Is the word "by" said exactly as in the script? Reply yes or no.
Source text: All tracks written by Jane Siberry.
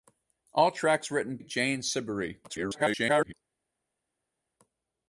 no